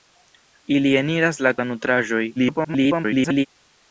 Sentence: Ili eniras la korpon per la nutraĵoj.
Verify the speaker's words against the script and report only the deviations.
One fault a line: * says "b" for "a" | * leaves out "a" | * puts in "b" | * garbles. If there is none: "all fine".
* leaves out "korpon per"
* garbles